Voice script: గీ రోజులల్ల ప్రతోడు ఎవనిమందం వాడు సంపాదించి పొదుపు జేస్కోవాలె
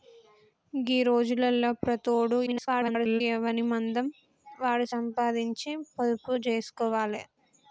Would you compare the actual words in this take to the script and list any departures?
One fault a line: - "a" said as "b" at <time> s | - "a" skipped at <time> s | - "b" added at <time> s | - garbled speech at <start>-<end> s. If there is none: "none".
- garbled speech at 2.5-3.2 s